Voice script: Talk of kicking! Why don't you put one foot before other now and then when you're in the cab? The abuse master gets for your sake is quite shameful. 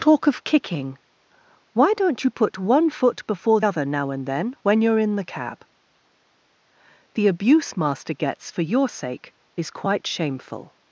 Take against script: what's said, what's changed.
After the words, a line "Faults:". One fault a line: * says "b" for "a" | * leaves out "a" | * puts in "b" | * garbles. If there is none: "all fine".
Talk of kicking! Why don't you put one foot before other now and then when you're in the cab? The abuse master gets for your sake is quite shameful.
Faults:
all fine